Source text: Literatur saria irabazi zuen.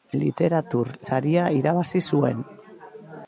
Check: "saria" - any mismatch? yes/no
no